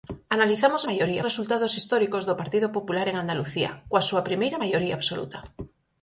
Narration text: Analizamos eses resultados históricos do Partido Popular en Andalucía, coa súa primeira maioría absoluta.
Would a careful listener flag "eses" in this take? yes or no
yes